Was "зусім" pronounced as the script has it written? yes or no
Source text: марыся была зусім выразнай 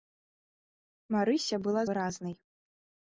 no